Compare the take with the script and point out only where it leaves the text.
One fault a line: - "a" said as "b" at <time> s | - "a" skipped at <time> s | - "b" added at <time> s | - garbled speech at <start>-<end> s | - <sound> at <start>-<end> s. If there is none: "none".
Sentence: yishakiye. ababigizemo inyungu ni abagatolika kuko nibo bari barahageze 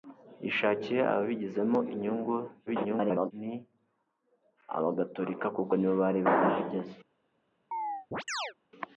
- garbled speech at 2.7-3.3 s
- chirp at 7.7-8.5 s